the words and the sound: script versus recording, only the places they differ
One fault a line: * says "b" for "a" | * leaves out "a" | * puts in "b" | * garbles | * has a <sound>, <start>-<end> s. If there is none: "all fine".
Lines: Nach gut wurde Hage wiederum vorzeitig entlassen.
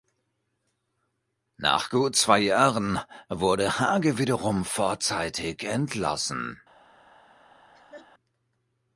* puts in "zwei Jahren"
* has a laugh, 7.7-8.1 s